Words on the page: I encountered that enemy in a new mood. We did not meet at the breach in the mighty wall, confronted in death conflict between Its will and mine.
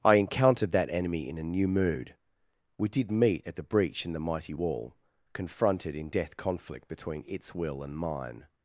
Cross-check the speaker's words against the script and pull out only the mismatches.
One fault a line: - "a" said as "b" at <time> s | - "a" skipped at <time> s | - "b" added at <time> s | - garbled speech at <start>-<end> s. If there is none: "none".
- "not" skipped at 3.1 s